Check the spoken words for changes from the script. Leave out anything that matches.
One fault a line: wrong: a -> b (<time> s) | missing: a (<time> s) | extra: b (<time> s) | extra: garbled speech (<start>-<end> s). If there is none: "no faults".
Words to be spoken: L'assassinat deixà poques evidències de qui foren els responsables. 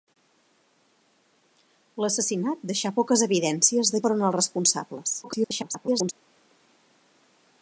missing: qui (4.0 s)
extra: garbled speech (5.2-6.1 s)